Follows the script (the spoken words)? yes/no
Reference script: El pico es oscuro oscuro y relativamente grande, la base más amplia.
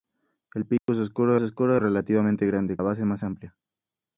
yes